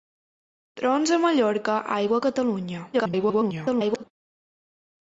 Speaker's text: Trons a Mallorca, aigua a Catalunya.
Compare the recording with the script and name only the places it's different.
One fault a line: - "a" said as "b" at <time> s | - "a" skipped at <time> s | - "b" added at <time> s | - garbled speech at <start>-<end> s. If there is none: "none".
- garbled speech at 2.9-4.0 s